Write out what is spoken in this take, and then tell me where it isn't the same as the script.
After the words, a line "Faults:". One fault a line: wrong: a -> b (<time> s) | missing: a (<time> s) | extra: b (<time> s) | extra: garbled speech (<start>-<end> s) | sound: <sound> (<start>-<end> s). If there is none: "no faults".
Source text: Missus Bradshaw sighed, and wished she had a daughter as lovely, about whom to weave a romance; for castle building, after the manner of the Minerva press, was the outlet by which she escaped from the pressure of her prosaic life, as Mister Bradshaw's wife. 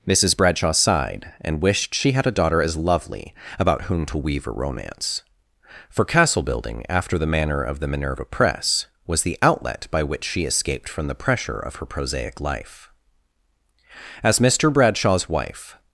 Missus Bradshaw sighed, and wished she had a daughter as lovely, about whom to weave a romance; for castle building, after the manner of the Minerva press, was the outlet by which she escaped from the pressure of her prosaic life, as Mister Bradshaw's wife.
Faults:
no faults